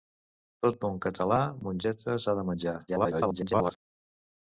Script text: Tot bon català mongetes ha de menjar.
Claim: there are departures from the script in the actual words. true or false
true